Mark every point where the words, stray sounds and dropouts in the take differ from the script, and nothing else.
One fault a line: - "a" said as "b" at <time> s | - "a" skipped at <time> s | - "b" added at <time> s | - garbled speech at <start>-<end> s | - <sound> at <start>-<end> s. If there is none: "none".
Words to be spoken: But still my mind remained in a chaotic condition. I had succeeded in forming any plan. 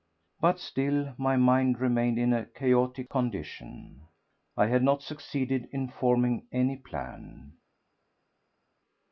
- "not" added at 4.8 s